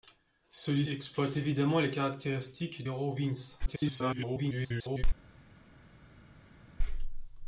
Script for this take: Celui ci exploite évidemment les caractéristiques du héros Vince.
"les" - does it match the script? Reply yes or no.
yes